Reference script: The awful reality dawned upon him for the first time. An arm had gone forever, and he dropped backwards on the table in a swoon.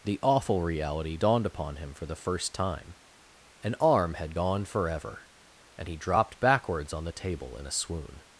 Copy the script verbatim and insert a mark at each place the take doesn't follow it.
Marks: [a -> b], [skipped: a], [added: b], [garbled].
The awful reality dawned upon him for the first time. An arm had gone forever, and he dropped backwards on the table in a swoon.